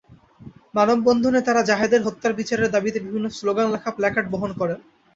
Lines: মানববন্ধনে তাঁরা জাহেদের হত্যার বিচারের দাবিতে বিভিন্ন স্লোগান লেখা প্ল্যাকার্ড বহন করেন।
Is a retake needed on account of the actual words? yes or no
no